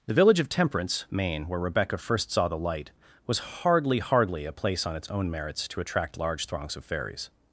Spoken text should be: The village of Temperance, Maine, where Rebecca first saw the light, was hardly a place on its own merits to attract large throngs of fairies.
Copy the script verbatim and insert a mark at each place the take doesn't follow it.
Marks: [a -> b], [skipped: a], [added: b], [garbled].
The village of Temperance, Maine, where Rebecca first saw the light, was hardly [added: hardly] a place on its own merits to attract large throngs of fairies.